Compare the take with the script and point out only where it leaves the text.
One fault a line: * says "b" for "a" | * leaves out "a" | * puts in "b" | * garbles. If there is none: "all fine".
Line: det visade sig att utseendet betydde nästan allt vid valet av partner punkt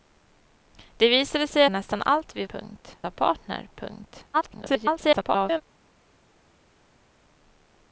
* leaves out "att utseendet betydde"
* says "punkt" for "valet"
* garbles